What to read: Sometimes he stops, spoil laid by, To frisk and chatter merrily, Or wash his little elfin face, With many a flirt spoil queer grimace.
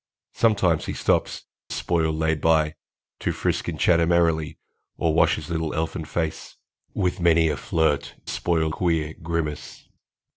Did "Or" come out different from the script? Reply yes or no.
no